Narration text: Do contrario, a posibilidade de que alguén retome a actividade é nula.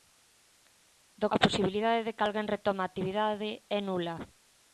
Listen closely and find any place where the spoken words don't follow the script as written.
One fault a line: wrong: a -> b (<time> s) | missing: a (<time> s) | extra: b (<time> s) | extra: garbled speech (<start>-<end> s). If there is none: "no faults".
missing: contrario (1.3 s)